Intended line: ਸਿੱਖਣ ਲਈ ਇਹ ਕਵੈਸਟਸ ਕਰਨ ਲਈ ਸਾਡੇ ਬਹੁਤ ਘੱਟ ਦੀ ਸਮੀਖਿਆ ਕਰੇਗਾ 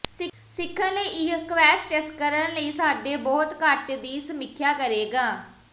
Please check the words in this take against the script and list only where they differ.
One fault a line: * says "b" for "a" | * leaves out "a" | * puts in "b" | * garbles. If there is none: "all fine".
all fine